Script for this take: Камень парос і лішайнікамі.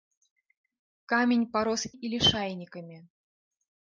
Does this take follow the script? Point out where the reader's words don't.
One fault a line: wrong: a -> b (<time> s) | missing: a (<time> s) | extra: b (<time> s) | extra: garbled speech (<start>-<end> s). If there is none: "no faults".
no faults